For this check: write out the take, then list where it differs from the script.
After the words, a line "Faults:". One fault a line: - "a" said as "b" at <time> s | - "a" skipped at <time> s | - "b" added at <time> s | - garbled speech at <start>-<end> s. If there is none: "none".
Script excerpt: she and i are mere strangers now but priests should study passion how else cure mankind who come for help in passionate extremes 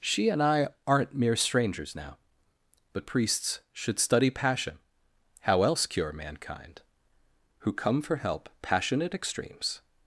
she and i aren't mere strangers now but priests should study passion how else cure mankind who come for help passionate extremes
Faults:
- "are" said as "aren't" at 0.8 s
- "in" skipped at 8.5 s